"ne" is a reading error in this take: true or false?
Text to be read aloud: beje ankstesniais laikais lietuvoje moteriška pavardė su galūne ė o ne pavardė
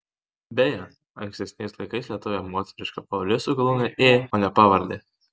false